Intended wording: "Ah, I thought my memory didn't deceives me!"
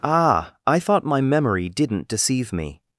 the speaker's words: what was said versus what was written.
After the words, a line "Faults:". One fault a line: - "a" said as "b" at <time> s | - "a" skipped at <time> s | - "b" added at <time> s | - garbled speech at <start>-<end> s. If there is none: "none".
"Ah, I thought my memory didn't deceive me!"
Faults:
- "deceives" said as "deceive" at 2.1 s